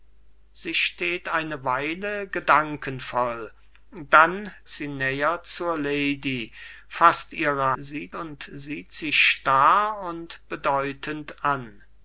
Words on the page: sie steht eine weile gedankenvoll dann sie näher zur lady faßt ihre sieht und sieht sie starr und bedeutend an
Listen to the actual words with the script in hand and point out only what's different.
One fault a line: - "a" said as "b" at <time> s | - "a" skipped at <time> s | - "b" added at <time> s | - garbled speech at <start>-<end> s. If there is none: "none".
none